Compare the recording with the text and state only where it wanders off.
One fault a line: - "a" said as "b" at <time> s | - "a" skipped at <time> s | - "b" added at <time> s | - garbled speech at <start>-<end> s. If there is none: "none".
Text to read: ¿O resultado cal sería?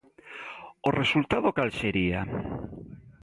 none